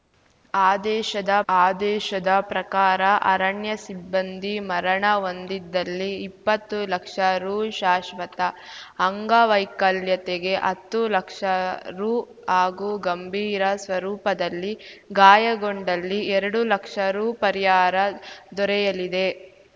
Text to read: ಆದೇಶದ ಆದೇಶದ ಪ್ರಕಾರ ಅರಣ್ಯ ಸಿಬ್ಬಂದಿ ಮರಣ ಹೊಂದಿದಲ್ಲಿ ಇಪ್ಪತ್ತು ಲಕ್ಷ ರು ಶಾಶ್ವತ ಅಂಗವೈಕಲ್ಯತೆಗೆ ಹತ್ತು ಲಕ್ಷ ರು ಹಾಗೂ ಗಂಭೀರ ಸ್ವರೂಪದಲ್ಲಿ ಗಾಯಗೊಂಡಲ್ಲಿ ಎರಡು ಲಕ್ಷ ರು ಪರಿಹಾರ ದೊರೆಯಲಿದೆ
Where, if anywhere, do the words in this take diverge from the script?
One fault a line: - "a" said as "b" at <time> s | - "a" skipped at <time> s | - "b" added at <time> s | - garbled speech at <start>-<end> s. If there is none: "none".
none